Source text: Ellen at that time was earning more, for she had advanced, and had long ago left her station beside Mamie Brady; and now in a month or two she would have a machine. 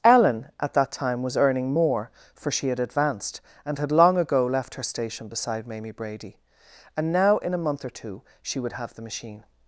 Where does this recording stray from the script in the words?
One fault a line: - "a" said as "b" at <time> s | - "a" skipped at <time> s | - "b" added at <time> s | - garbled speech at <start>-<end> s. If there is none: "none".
- "a" said as "the" at 8.9 s